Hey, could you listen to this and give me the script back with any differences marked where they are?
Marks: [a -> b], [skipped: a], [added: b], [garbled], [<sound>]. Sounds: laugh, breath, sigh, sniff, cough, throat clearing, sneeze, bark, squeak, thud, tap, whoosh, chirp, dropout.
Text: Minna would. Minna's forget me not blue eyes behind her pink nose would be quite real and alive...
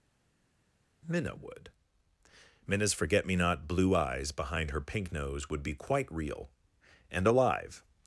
Minna would. Minna's forget me not blue eyes behind her pink nose would be quite real and alive...